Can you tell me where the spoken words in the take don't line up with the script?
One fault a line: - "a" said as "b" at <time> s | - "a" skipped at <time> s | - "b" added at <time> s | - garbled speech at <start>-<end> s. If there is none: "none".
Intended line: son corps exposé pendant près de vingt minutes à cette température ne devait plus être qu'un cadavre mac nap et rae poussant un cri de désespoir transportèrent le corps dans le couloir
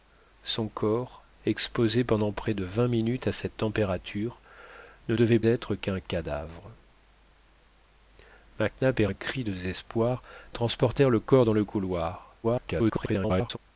- "plus" skipped at 5.4 s
- "rae poussant" skipped at 9.1 s
- garbled speech at 12.4-13.6 s